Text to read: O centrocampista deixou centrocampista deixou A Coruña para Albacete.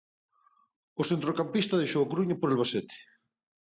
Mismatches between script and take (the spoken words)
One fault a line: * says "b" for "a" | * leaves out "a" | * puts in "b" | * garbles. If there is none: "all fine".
* leaves out "centrocampista deixou"
* says "por" for "para"